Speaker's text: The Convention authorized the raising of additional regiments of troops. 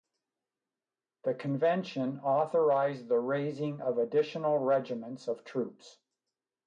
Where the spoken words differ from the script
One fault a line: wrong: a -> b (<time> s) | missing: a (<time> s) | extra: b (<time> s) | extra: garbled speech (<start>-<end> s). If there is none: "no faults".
no faults